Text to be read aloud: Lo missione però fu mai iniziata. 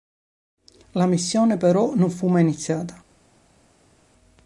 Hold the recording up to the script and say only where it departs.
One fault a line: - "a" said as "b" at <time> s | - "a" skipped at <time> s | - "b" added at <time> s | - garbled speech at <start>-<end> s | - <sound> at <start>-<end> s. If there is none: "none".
- "Lo" said as "La" at 0.9 s
- "non" added at 1.9 s